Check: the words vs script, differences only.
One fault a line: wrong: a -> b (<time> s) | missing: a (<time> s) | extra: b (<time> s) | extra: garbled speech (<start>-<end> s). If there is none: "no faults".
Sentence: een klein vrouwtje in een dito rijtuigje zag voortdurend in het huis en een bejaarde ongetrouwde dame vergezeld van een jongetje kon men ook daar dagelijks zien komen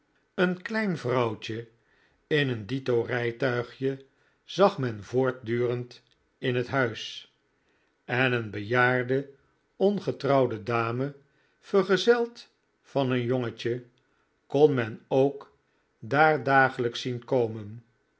extra: men (4.8 s)